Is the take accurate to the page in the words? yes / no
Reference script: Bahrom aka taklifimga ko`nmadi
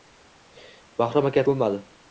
no